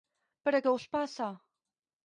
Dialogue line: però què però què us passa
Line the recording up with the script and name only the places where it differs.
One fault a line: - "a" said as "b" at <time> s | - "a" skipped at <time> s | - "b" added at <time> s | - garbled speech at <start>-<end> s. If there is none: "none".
- "però què" skipped at 0.7 s